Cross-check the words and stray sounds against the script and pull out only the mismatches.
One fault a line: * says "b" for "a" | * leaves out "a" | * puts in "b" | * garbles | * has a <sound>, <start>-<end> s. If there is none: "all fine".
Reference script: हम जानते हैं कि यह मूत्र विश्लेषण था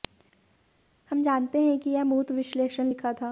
* puts in "लिखा"